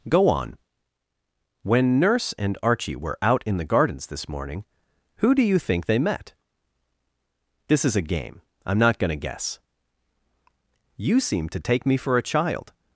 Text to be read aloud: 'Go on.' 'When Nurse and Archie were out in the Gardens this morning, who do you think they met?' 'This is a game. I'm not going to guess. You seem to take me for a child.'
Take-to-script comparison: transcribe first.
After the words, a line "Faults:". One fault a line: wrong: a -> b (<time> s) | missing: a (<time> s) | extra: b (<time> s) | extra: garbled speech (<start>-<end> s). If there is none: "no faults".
'Go on.' 'When Nurse and Archie were out in the Gardens this morning, who do you think they met?' 'This is a game. I'm not going to guess. You seem to take me for a child.'
Faults:
no faults